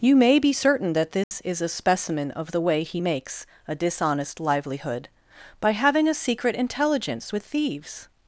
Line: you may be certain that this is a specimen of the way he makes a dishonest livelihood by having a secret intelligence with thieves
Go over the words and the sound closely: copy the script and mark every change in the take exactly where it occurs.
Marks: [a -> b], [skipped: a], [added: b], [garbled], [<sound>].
you may be certain that this [dropout] is a specimen of the way he makes a dishonest livelihood by having a secret intelligence with thieves